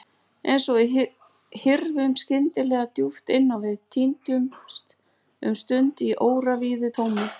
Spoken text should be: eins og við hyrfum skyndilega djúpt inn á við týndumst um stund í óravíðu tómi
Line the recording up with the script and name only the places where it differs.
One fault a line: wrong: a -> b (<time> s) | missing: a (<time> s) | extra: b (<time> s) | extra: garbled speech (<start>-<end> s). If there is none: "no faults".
no faults